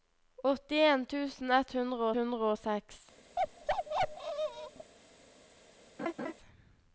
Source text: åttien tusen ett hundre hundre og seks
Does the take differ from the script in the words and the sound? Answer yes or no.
yes